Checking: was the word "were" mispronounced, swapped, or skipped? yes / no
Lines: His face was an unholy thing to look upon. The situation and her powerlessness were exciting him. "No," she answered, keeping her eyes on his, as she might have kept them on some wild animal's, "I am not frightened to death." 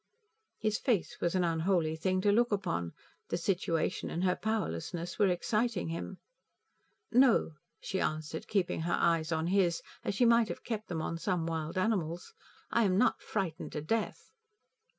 no